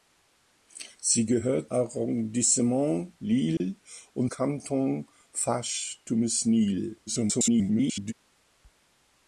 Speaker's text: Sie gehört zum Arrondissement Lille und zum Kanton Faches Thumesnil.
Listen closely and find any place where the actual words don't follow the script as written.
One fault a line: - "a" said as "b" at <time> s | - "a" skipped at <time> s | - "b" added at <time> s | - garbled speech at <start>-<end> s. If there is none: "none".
- "zum" skipped at 1.7 s
- "zum" skipped at 4.3 s
- garbled speech at 7.1-8.1 s